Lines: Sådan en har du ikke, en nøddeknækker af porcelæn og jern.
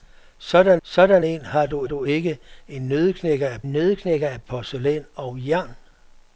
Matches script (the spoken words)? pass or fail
fail